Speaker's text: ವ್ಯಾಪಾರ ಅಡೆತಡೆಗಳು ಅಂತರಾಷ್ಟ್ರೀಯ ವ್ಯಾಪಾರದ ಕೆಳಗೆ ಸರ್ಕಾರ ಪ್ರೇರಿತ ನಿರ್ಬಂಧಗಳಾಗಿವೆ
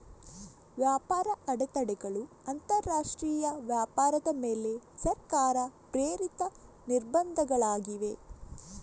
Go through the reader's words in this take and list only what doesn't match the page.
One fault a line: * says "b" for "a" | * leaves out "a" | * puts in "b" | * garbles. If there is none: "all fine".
* says "ಮೇಲೆ" for "ಕೆಳಗೆ"